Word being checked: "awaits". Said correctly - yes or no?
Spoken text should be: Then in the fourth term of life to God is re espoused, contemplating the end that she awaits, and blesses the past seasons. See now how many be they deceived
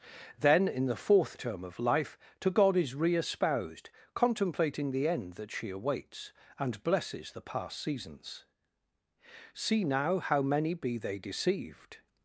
yes